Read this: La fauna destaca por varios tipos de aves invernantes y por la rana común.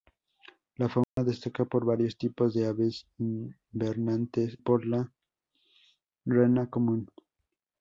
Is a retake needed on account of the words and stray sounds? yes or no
yes